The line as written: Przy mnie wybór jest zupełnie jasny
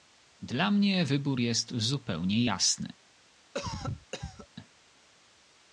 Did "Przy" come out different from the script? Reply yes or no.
yes